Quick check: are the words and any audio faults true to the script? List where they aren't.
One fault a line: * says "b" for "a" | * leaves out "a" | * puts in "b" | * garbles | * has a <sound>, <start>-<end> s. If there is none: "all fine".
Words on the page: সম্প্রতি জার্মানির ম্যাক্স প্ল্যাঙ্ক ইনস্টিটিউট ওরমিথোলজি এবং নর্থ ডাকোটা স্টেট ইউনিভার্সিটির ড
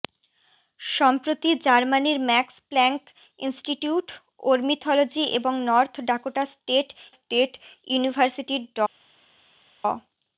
* puts in "স্টেট"